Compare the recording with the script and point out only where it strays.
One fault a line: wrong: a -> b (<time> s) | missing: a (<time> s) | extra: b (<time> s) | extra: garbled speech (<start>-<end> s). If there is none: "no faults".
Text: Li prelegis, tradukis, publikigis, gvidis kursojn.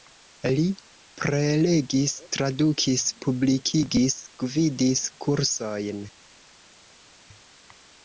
no faults